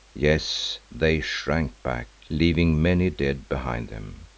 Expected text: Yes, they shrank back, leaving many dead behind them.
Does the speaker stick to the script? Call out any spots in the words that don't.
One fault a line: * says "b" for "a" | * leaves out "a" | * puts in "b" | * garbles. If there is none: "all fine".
all fine